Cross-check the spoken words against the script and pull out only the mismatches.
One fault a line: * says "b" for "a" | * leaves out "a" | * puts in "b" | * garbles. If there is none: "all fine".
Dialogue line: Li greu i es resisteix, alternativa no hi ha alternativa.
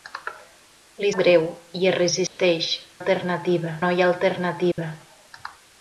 all fine